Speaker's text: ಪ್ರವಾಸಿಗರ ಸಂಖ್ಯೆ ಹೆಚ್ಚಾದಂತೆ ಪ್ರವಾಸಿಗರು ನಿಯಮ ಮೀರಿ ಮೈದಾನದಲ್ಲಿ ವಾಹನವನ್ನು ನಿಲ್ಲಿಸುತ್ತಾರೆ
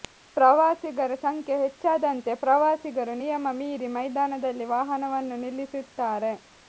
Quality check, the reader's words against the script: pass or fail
pass